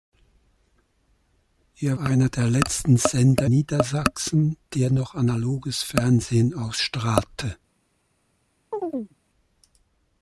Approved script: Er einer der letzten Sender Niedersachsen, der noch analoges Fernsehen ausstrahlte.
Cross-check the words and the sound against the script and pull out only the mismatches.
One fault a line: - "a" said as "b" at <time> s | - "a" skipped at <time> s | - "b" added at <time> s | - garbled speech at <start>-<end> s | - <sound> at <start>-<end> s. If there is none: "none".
- chirp at 8.7-9.2 s